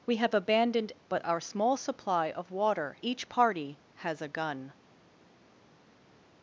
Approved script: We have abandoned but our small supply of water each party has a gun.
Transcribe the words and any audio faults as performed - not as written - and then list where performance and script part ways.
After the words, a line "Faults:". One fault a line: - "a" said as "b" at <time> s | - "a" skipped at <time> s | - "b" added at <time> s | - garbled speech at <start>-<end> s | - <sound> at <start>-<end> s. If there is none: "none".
We have abandoned but our small supply of water each party has a gun.
Faults:
none